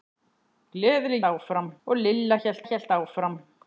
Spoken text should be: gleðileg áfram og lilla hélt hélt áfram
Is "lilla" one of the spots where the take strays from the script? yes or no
no